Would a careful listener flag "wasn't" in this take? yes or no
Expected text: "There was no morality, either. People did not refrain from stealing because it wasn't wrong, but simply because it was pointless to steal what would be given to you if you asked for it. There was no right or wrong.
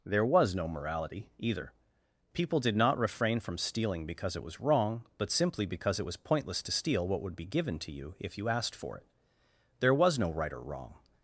yes